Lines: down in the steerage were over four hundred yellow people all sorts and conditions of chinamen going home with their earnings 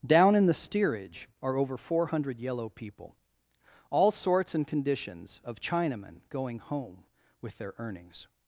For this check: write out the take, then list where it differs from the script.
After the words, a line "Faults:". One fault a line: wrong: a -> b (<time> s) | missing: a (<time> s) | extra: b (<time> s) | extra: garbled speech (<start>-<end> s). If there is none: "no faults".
down in the steerage are over four hundred yellow people all sorts and conditions of chinamen going home with their earnings
Faults:
wrong: were -> are (1.4 s)